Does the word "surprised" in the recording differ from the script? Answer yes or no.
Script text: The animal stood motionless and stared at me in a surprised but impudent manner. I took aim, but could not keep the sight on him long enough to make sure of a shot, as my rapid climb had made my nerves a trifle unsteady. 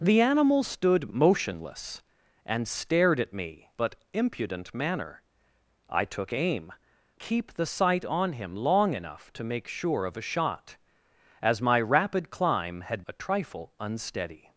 yes